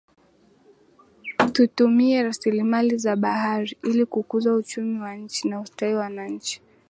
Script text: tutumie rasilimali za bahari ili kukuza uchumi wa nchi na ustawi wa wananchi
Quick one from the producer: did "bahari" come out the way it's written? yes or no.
yes